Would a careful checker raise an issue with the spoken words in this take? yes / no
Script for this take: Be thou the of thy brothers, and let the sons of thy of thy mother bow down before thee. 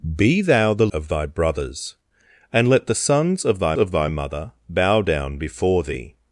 no